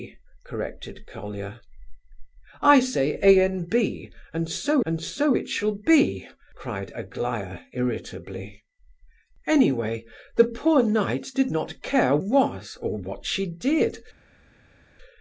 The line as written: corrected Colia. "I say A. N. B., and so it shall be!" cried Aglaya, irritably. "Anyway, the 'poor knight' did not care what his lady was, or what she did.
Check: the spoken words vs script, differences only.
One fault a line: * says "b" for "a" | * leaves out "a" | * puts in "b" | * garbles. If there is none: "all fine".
* puts in "and so"
* leaves out "what his lady"